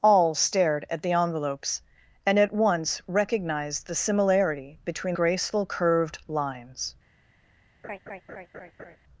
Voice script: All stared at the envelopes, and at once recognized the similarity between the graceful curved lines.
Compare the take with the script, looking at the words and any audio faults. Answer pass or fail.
fail